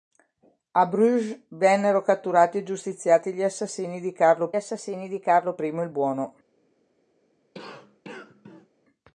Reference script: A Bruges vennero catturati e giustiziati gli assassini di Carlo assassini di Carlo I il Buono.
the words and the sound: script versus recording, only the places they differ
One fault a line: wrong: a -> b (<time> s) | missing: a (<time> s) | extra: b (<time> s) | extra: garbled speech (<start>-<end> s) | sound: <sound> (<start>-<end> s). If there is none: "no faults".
sound: cough (7.5-8.7 s)